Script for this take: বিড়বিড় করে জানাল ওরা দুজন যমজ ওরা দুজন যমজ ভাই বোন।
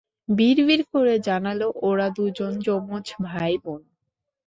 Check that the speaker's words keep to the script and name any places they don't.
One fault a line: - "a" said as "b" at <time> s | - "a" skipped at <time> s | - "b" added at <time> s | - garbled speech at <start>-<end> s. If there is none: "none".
- "ওরা দুজন যমজ" skipped at 3.0 s